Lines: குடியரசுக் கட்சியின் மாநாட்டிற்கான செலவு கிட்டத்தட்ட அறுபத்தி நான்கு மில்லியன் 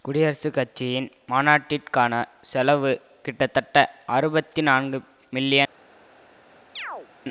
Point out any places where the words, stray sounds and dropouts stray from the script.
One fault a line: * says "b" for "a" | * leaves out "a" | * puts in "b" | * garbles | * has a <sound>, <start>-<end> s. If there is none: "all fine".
* has a chirp, 6.8-7.1 s